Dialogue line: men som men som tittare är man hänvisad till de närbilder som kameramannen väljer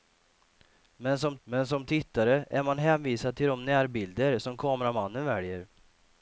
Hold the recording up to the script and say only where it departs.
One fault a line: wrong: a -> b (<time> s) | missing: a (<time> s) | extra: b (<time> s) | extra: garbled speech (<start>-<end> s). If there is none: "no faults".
no faults